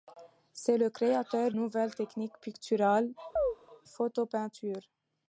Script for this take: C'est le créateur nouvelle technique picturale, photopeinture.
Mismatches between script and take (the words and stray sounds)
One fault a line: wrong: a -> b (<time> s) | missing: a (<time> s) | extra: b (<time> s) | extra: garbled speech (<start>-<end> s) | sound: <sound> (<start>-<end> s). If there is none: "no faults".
sound: chirp (3.4-3.6 s)